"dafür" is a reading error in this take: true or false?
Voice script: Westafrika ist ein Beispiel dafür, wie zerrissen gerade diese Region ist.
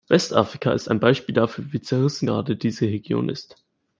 false